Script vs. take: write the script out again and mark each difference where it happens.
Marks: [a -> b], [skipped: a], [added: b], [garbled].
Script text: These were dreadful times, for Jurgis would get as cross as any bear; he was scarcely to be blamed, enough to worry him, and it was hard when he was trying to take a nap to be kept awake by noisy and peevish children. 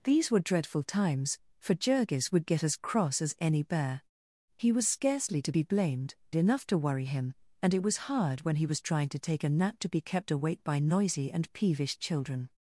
These were dreadful times, for Jurgis would get as cross as any bear; he was scarcely to be blamed, enough to worry him, and it was hard when he was trying to take a nap to be kept awake by noisy and peevish children.